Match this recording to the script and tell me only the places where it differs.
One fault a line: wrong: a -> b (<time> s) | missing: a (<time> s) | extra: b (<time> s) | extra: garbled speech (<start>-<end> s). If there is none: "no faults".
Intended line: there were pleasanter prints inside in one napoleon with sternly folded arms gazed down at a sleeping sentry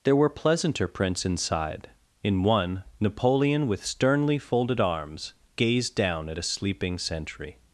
no faults